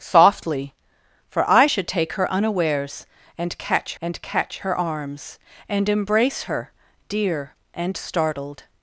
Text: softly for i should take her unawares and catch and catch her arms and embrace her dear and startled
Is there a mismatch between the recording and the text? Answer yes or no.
no